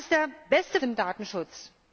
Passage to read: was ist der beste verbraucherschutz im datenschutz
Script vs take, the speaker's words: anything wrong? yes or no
yes